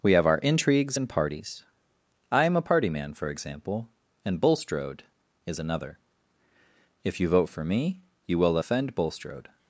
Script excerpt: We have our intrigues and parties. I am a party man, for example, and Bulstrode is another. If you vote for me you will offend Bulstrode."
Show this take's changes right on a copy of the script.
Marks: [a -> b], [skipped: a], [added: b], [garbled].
We have our intrigues and parties. I am a party man, for example, and Bulstrode is another. If you vote for me you will offend Bulstrode."